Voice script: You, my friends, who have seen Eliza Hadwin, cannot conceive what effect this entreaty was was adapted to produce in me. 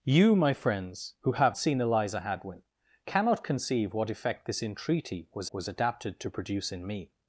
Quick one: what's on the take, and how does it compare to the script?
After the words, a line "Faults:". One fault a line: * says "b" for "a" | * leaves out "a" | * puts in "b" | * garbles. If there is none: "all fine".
You, my friends, who have seen Eliza Hadwin, cannot conceive what effect this entreaty was was adapted to produce in me.
Faults:
all fine